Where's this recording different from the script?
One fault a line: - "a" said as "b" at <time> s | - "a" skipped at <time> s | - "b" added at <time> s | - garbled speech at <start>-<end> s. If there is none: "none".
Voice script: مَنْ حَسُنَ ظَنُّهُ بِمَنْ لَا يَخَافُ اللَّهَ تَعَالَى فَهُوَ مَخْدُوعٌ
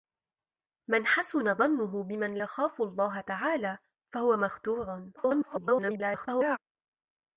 - "لَا" skipped at 2.4 s
- garbled speech at 5.2-6.6 s